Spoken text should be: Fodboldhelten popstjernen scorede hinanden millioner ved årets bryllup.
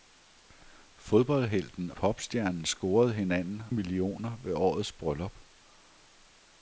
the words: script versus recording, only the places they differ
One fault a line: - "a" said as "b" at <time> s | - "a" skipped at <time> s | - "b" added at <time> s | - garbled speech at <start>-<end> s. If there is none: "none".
none